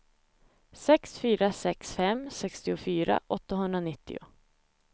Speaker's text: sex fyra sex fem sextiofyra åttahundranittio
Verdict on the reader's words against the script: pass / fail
pass